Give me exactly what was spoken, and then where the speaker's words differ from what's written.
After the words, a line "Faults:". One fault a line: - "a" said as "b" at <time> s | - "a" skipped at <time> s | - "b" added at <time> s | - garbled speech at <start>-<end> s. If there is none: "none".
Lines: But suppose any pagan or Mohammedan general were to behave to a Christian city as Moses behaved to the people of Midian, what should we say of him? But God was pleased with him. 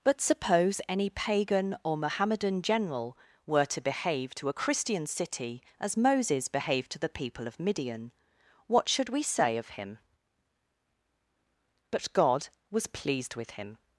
But suppose any pagan or Mohammedan general were to behave to a Christian city as Moses behaved to the people of Midian, what should we say of him? But God was pleased with him.
Faults:
none